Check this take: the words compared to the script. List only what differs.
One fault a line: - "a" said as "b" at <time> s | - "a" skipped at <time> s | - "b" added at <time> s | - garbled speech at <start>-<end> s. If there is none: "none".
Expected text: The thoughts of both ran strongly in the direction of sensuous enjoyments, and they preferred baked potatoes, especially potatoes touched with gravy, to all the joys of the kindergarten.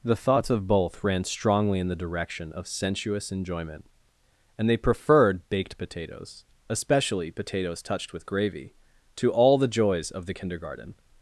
- "enjoyments" said as "enjoyment" at 3.3 s